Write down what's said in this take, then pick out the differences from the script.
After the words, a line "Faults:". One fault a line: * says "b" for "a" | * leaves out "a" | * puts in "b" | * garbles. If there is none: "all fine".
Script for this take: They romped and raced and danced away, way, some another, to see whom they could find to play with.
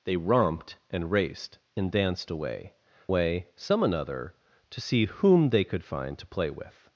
They romped and raced and danced away, way, some another, to see whom they could find to play with.
Faults:
all fine